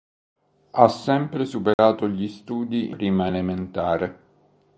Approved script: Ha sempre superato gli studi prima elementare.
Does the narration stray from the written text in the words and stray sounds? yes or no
yes